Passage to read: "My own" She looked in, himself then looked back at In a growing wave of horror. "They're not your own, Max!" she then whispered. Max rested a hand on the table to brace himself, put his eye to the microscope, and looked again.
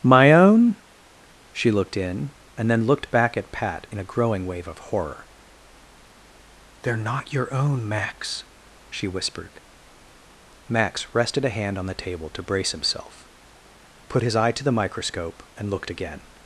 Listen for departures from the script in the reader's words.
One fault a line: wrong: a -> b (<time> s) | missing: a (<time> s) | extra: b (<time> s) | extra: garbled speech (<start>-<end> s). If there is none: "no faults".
wrong: himself -> and (2.6 s)
extra: Pat (3.5 s)
missing: then (9.1 s)